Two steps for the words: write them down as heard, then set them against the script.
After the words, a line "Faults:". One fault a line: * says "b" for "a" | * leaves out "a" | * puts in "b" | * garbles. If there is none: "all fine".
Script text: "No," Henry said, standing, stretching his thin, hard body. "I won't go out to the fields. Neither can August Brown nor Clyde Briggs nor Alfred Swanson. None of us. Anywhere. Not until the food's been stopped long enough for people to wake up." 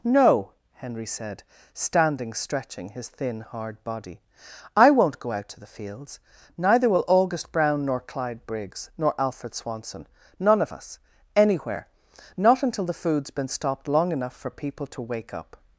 "No," Henry said, standing, stretching his thin, hard body. "I won't go out to the fields. Neither will August Brown nor Clyde Briggs nor Alfred Swanson. None of us. Anywhere. Not until the food's been stopped long enough for people to wake up."
Faults:
* says "will" for "can"